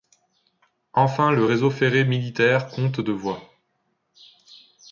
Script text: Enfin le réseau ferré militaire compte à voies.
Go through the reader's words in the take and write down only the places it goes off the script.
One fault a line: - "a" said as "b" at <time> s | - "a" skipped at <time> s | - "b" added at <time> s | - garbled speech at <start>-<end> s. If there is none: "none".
- "à" said as "de" at 3.0 s